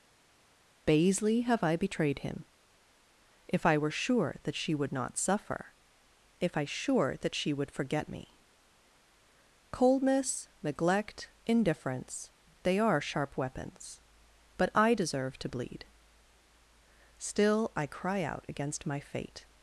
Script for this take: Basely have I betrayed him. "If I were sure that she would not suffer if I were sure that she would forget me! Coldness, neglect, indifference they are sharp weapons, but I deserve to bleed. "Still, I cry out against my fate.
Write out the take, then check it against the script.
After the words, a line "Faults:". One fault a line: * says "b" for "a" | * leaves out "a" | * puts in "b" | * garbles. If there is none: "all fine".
Basely have I betrayed him. "If I were sure that she would not suffer if I sure that she would forget me! Coldness, neglect, indifference they are sharp weapons, but I deserve to bleed. "Still, I cry out against my fate.
Faults:
* leaves out "were"